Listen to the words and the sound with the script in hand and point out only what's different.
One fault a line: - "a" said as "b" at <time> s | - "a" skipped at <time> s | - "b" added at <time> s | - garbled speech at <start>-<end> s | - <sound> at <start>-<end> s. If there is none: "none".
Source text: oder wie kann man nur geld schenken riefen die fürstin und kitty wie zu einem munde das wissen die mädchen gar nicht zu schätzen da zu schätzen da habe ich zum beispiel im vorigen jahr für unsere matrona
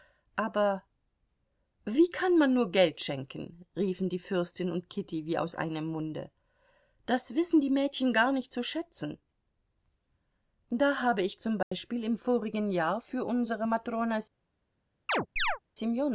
- "oder" said as "aber" at 0.3 s
- "zu" said as "aus" at 5.4 s
- "zu schätzen da" skipped at 11.0 s
- dropout at 11.6-11.7 s
- chirp at 15.1-15.6 s